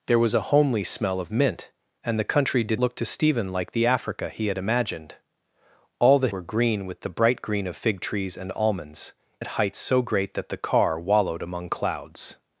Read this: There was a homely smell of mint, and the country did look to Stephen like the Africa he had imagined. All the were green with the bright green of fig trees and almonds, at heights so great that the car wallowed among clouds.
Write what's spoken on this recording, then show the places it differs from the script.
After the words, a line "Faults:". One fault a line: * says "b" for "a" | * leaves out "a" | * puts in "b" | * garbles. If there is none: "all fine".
There was a homely smell of mint, and the country did look to Stephen like the Africa he had imagined. All the were green with the bright green of fig trees and almonds, at heights so great that the car wallowed among clouds.
Faults:
all fine